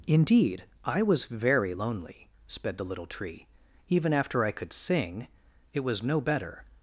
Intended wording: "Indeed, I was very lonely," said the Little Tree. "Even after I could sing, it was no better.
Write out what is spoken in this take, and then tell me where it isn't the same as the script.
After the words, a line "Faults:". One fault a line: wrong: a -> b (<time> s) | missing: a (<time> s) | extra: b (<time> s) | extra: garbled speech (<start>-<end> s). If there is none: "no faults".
"Indeed, I was very lonely," sped the Little Tree. "Even after I could sing, it was no better.
Faults:
wrong: said -> sped (2.5 s)